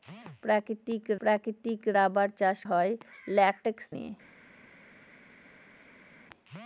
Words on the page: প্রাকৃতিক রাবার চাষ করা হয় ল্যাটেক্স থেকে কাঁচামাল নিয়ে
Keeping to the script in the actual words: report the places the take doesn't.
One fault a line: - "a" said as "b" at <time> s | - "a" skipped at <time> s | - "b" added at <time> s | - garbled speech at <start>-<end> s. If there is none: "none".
- "প্রাকৃতিক" added at 1.2 s
- "করা" skipped at 2.6 s
- "থেকে কাঁচামাল" skipped at 3.8 s